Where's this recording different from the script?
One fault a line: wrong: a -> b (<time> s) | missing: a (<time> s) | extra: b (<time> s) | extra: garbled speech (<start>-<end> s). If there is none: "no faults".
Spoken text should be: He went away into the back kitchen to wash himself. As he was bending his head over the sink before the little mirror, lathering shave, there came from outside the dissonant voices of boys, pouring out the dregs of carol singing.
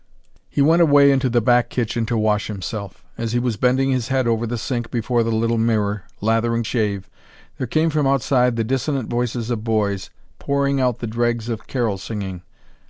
no faults